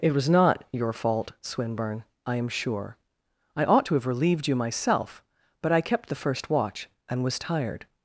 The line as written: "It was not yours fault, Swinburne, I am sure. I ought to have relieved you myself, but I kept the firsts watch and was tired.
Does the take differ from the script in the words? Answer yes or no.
yes